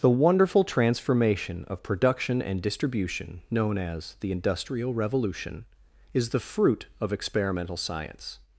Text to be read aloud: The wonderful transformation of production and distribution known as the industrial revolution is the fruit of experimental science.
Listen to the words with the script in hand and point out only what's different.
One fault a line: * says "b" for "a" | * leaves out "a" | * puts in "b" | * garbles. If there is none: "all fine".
all fine